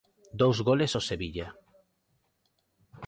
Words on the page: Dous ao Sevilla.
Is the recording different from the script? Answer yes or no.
yes